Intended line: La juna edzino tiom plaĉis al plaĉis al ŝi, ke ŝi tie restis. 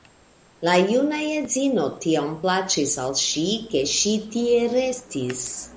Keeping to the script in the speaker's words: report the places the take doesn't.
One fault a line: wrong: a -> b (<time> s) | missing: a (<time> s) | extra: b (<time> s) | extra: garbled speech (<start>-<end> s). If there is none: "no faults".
missing: plaĉis al (3.2 s)